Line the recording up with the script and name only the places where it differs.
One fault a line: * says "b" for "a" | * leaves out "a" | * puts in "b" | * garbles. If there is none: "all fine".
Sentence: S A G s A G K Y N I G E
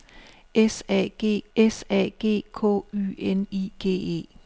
all fine